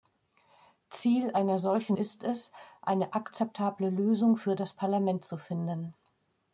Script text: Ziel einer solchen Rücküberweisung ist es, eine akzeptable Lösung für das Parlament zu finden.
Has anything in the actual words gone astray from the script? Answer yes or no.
yes